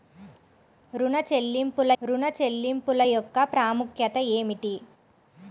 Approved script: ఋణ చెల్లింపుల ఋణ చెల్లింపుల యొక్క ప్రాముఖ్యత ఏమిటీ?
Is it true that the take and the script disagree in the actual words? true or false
false